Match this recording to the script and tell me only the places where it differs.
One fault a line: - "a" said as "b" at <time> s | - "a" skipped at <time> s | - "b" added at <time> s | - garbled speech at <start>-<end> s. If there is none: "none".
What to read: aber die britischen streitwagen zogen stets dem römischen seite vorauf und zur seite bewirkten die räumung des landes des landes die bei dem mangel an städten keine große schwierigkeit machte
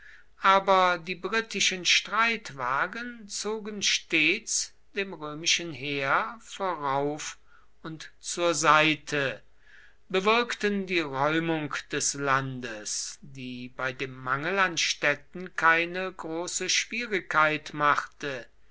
- "seite" said as "heer" at 5.7 s
- "des landes" skipped at 13.2 s